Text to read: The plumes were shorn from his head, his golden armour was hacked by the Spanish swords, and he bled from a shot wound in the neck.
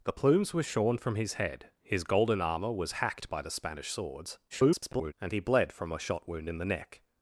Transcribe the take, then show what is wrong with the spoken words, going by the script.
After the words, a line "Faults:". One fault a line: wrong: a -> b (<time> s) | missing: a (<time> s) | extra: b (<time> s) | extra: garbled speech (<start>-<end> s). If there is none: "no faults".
The plumes were shorn from his head, his golden armour was hacked by the Spanish swords, [garbled] and he bled from a shot wound in the neck.
Faults:
extra: garbled speech (4.5-5.1 s)